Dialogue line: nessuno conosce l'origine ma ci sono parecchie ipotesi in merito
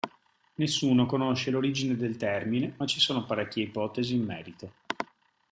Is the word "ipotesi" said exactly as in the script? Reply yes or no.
yes